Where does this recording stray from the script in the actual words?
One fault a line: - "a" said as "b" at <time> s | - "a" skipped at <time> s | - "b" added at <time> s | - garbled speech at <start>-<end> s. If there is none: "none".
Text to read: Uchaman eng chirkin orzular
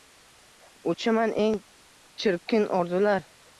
none